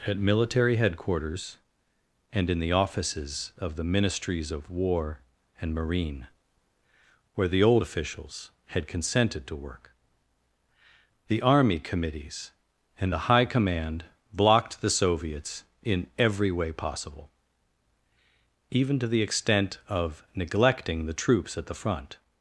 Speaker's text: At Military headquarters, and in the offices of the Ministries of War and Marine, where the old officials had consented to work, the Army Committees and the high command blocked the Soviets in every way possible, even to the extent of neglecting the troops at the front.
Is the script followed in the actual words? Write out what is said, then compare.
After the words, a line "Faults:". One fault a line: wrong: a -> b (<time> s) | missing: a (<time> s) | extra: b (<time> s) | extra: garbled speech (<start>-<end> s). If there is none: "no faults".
At Military headquarters, and in the offices of the Ministries of War and Marine, where the old officials had consented to work, the Army Committees and the high command blocked the Soviets in every way possible, even to the extent of neglecting the troops at the front.
Faults:
no faults